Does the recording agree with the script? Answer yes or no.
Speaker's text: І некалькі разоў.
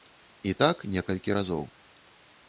no